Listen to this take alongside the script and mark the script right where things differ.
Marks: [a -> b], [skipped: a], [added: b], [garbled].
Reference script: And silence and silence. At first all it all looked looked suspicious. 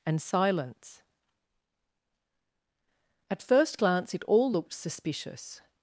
And silence [skipped: and silence.] At first [all -> glance] it all looked [skipped: looked] suspicious.